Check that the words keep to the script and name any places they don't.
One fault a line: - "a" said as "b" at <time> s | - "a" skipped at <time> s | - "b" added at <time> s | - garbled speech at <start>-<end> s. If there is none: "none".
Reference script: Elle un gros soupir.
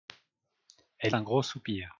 none